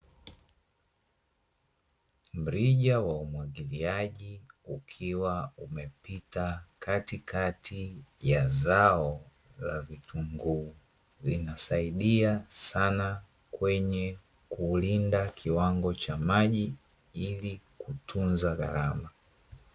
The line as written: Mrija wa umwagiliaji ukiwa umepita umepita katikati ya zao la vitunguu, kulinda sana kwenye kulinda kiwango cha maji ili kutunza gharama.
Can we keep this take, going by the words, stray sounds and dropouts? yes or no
no